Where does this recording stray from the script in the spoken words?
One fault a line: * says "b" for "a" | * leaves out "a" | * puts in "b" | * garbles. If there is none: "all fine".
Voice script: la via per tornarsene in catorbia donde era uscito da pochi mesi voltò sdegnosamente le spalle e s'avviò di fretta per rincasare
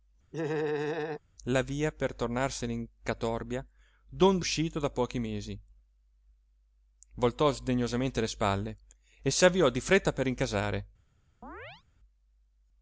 * leaves out "era"